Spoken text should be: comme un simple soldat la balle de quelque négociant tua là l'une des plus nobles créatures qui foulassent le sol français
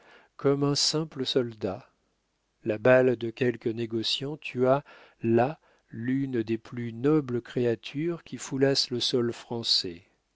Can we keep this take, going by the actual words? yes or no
yes